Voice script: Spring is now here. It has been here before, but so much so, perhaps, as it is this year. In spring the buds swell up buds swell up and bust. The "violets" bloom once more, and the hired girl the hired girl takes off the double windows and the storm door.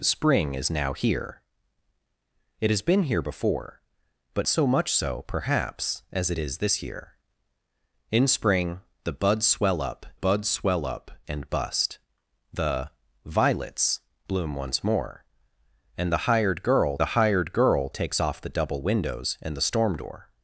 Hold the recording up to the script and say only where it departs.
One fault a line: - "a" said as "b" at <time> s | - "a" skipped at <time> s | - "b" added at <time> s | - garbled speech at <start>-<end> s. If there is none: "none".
none